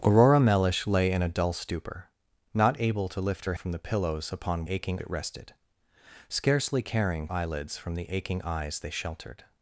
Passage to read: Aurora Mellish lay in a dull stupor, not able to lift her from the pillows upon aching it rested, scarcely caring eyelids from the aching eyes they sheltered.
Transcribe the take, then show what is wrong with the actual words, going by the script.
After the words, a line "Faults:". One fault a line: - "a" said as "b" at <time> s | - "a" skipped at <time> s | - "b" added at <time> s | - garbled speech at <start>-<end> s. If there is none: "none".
Aurora Mellish lay in a dull stupor, not able to lift her from the pillows upon aching it rested, scarcely caring eyelids from the aching eyes they sheltered.
Faults:
none